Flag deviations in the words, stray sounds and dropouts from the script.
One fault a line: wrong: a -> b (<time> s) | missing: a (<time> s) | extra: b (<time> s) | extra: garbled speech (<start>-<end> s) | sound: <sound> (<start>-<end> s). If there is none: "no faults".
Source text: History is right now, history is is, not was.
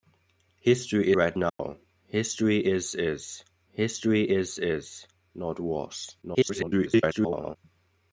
missing: is (1.1 s)
sound: dropout (1.5-1.6 s)
extra: history is is (3.7 s)
extra: garbled speech (6.2-7.6 s)